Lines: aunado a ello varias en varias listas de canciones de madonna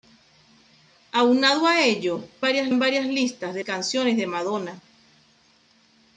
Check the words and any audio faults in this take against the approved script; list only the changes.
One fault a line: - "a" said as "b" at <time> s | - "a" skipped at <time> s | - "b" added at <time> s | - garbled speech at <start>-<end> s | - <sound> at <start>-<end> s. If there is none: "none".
none